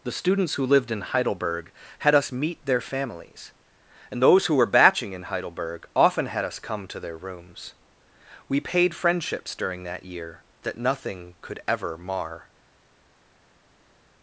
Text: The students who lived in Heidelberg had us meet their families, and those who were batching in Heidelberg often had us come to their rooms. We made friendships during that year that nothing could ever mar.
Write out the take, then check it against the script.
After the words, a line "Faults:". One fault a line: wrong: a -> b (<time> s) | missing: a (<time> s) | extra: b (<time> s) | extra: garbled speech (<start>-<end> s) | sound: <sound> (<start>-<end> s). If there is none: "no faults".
The students who lived in Heidelberg had us meet their families, and those who were batching in Heidelberg often had us come to their rooms. We paid friendships during that year that nothing could ever mar.
Faults:
wrong: made -> paid (8.6 s)